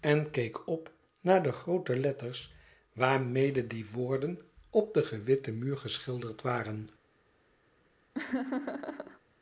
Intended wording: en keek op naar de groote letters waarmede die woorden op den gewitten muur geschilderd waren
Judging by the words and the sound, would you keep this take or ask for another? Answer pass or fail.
fail